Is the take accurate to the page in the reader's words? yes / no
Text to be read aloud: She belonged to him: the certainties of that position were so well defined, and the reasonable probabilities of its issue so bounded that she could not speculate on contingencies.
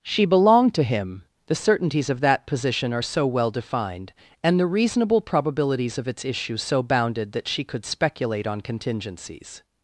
no